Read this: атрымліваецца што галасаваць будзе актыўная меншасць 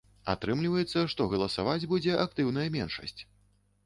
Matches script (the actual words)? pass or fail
pass